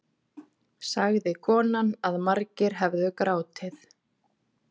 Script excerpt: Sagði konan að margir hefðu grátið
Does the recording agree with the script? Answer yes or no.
yes